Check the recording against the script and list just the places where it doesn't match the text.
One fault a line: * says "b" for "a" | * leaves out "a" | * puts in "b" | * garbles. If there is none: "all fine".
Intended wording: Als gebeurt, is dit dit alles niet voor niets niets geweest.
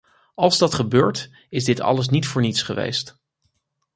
* puts in "dat"
* leaves out "dit"
* leaves out "niets"